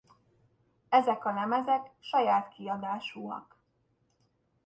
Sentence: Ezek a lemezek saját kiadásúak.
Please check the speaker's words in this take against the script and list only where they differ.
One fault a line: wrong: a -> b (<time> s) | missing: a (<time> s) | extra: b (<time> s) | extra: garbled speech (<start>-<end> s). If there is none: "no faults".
no faults